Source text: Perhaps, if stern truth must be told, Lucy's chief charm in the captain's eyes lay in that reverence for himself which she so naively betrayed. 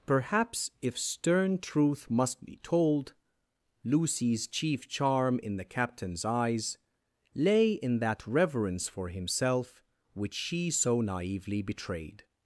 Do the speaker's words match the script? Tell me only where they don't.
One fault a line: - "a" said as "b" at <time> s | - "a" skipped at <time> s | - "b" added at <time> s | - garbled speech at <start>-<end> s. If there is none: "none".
none